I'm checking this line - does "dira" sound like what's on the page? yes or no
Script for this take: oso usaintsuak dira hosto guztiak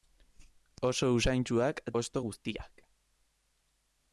no